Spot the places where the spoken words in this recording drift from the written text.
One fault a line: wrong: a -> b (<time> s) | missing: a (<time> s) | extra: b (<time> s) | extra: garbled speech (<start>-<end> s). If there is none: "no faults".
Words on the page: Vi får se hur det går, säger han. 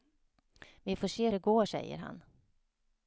missing: hur (1.3 s)